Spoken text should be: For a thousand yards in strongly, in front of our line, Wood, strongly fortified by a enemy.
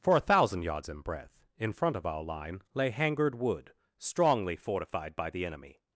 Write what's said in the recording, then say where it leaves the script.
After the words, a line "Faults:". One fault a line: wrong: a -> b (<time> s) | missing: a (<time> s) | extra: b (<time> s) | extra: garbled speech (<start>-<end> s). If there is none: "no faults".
For a thousand yards in breadth, in front of our line, lay Hangard Wood, strongly fortified by the enemy.
Faults:
wrong: strongly -> breadth (1.0 s)
extra: lay Hangard (2.7 s)
wrong: a -> the (5.3 s)